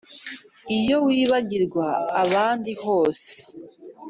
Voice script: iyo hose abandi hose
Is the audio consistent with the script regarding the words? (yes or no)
no